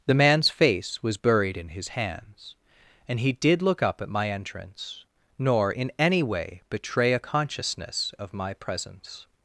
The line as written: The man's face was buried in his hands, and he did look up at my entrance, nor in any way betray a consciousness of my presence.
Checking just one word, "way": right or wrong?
right